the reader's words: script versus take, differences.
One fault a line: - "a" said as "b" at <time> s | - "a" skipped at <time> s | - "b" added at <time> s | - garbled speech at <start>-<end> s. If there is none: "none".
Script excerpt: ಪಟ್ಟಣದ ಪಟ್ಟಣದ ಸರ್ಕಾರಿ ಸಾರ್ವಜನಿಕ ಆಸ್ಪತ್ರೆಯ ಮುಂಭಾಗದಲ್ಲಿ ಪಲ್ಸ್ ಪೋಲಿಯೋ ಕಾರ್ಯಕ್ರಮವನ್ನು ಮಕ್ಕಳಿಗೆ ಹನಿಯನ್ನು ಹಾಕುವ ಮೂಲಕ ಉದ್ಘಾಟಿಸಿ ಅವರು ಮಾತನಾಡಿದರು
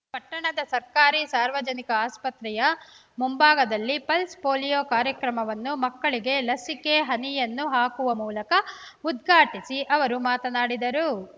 - "ಪಟ್ಟಣದ" skipped at 0.6 s
- "ಲಸಿಕೆ" added at 6.4 s